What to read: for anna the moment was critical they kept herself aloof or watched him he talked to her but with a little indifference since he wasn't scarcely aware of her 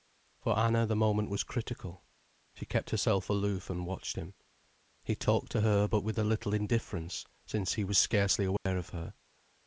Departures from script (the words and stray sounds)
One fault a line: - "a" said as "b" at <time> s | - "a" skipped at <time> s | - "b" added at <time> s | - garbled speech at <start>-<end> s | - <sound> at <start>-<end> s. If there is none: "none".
- "they" said as "she" at 2.5 s
- "or" said as "and" at 3.7 s
- "wasn't" said as "was" at 7.8 s
- dropout at 8.6-8.7 s